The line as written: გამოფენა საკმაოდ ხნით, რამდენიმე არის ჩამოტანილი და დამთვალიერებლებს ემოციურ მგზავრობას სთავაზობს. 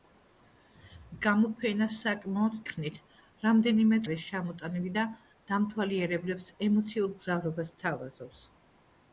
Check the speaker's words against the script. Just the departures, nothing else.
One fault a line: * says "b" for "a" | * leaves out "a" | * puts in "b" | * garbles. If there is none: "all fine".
all fine